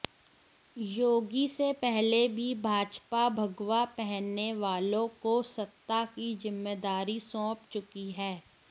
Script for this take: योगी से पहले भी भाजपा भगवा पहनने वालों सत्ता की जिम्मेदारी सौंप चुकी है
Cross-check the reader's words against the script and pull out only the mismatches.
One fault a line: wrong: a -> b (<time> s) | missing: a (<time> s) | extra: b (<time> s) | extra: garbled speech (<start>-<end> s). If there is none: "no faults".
extra: को (5.2 s)